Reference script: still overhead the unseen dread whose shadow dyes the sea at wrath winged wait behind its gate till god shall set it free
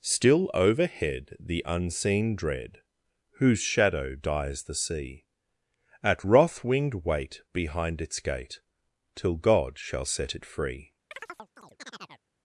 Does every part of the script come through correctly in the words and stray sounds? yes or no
no